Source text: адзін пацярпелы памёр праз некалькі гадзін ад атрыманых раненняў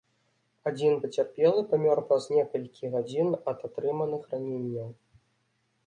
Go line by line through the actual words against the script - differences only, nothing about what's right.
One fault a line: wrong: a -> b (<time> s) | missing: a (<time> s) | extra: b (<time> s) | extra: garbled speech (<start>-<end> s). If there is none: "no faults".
no faults